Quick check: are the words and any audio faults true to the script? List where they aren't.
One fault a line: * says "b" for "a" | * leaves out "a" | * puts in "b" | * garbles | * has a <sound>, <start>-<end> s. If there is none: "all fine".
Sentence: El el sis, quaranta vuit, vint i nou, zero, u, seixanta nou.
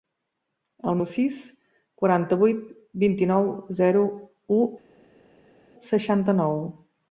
all fine